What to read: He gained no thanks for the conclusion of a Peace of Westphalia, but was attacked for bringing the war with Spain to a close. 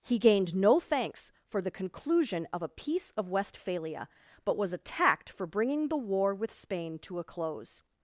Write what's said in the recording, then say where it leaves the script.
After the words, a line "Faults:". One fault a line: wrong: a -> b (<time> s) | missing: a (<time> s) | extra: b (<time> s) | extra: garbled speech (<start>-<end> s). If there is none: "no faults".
He gained no thanks for the conclusion of a Peace of Westphalia, but was attacked for bringing the war with Spain to a close.
Faults:
no faults